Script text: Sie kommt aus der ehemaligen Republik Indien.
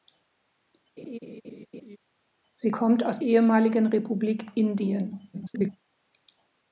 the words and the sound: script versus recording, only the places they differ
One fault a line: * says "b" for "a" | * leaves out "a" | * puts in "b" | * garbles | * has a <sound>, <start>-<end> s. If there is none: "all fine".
* has a laugh, 1.0-2.0 s
* leaves out "der"
* garbles